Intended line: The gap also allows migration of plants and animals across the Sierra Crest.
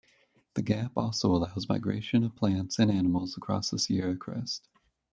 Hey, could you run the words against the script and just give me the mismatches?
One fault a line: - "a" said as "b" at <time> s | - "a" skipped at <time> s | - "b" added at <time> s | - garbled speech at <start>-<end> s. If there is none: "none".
none